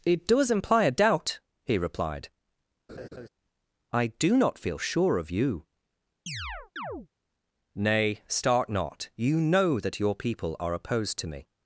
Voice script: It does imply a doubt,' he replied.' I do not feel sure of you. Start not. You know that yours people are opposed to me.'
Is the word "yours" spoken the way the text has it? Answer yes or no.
no